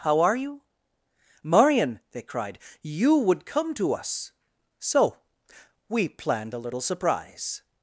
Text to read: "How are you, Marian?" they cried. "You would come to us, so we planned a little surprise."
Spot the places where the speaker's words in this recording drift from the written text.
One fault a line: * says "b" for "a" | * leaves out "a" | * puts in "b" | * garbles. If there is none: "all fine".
all fine